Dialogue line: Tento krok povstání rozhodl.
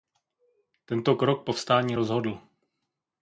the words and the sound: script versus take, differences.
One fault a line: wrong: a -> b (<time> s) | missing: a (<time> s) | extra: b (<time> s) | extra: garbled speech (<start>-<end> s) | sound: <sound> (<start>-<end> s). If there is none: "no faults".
no faults